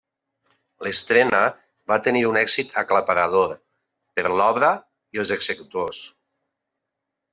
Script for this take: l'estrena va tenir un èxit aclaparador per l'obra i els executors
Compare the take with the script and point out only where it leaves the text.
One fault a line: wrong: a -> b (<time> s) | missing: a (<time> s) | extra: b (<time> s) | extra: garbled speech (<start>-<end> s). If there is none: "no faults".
no faults